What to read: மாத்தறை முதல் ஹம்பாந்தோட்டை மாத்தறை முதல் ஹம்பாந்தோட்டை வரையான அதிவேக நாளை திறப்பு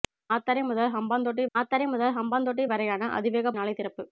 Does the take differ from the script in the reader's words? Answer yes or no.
no